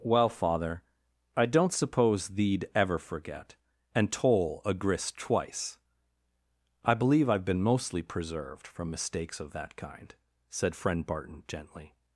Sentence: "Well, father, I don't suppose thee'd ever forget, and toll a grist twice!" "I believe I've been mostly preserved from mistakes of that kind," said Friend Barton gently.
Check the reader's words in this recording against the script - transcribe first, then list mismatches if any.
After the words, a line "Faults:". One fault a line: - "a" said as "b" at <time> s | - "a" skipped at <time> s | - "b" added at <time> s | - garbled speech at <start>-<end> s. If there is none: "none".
"Well, father, I don't suppose thee'd ever forget, and toll a grist twice!" "I believe I've been mostly preserved from mistakes of that kind," said Friend Barton gently.
Faults:
none